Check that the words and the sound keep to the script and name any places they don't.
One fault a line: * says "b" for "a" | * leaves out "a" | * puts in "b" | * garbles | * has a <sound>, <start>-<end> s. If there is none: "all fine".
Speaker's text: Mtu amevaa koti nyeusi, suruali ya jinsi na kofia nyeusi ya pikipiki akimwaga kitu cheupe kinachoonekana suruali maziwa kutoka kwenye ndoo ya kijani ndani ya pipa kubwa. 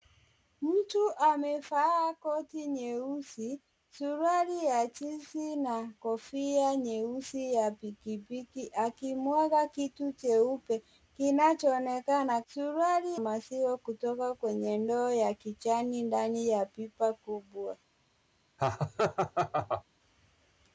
* has a laugh, 18.6-19.8 s